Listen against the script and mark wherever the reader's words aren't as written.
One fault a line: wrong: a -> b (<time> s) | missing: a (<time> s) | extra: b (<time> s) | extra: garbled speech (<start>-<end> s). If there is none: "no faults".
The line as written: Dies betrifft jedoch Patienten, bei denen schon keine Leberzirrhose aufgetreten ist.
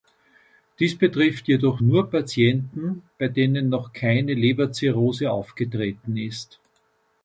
extra: nur (1.8 s)
wrong: schon -> noch (3.7 s)